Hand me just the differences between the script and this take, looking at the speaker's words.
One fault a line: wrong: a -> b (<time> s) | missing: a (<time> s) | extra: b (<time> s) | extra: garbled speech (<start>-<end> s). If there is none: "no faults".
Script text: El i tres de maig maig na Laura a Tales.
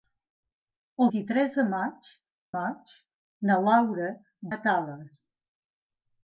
no faults